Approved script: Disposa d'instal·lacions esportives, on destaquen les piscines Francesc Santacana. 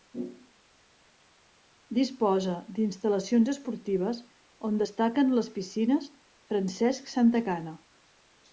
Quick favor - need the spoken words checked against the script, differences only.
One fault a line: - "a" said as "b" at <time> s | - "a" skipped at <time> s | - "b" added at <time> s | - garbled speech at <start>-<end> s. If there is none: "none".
none